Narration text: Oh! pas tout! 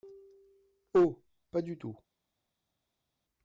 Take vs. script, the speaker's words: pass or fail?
fail